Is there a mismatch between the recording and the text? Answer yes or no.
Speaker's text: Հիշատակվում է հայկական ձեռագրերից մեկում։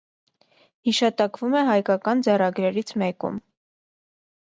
no